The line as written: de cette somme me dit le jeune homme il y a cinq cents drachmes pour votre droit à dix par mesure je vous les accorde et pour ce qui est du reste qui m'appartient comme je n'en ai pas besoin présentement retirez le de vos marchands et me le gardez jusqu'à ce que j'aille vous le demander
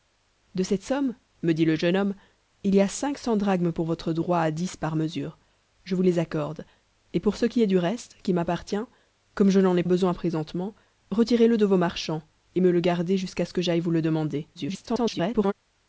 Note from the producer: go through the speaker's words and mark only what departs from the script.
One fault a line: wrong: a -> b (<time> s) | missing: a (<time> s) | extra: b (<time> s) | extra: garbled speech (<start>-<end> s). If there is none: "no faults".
missing: pas (9.8 s)
extra: garbled speech (14.5-15.5 s)